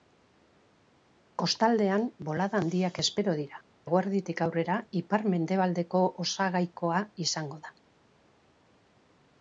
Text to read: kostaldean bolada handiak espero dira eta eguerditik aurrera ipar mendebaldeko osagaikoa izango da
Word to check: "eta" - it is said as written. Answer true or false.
false